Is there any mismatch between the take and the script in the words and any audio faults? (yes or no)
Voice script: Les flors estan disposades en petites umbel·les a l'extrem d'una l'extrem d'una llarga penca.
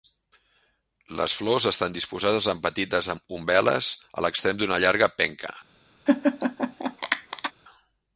yes